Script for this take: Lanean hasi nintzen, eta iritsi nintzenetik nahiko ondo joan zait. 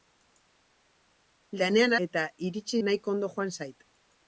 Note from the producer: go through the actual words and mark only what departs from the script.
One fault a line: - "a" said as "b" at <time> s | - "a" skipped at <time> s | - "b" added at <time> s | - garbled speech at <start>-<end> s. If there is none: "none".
- "hasi nintzen" skipped at 1.9 s
- "nintzenetik" skipped at 2.8 s